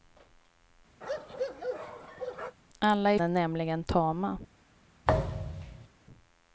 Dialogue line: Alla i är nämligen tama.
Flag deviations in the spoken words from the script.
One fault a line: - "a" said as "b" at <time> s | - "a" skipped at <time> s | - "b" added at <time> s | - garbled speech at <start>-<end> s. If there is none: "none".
none